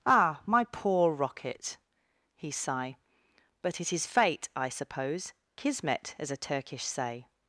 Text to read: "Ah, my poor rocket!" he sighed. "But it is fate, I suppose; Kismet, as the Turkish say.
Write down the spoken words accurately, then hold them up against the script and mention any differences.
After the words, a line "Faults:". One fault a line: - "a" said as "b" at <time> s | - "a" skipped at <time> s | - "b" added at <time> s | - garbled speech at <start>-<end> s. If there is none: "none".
"Ah, my poor rocket!" he sigh. "But it is fate, I suppose; Kismet, as a Turkish say.
Faults:
- "sighed" said as "sigh" at 2.5 s
- "the" said as "a" at 6.3 s